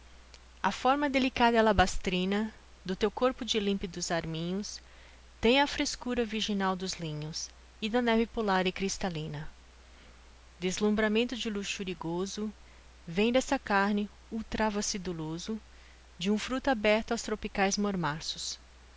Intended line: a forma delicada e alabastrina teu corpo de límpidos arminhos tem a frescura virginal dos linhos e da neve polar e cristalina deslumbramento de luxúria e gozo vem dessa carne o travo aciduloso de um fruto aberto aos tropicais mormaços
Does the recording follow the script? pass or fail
fail